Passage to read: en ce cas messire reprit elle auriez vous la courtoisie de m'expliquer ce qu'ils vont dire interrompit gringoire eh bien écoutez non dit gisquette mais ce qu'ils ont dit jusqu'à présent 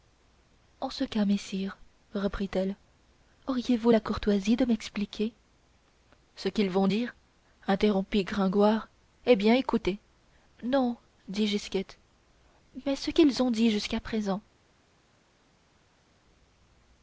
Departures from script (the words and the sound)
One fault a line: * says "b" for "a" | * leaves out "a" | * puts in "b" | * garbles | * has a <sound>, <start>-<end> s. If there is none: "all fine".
all fine